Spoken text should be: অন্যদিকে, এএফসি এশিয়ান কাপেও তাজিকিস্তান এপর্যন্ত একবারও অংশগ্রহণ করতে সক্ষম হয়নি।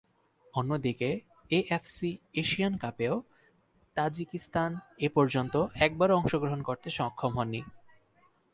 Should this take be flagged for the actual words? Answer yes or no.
no